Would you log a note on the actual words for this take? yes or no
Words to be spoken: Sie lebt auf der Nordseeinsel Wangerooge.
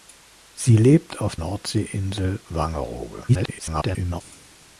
yes